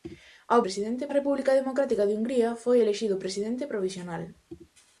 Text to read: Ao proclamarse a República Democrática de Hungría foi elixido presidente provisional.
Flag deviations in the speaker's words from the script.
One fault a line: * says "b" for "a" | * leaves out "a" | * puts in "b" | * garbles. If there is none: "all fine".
* says "presidente" for "proclamarse"